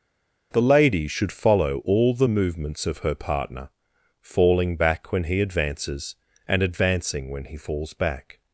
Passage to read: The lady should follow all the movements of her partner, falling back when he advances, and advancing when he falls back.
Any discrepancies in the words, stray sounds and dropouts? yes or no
no